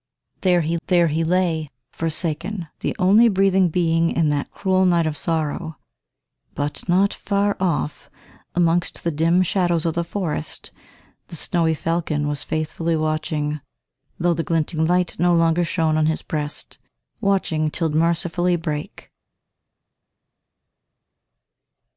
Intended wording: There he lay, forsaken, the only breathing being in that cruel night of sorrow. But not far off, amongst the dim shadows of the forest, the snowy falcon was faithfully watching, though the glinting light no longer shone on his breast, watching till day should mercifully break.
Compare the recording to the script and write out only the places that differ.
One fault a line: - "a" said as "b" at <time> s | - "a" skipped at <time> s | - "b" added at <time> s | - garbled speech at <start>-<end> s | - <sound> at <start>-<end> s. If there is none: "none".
- "there he" added at 0.9 s
- "day should" skipped at 17.9 s